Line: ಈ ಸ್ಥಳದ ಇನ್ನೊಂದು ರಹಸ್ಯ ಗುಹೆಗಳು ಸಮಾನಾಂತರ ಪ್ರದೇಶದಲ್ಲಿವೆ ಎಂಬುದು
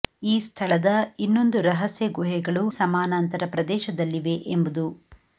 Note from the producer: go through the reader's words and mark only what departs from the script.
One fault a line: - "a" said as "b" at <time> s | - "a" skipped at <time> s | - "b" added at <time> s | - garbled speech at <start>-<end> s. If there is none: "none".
none